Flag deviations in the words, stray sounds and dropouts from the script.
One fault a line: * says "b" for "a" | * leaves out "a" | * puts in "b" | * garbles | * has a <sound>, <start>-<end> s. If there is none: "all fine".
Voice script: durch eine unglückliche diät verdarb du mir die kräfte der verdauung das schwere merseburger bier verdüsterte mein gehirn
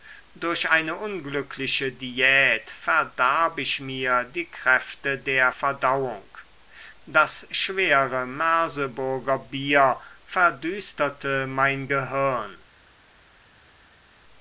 * says "ich" for "du"